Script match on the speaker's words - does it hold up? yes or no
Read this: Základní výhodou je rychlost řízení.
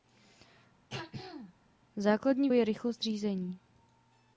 no